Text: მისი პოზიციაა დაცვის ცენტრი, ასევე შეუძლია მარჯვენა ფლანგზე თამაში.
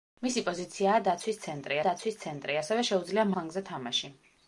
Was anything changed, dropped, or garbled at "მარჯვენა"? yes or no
yes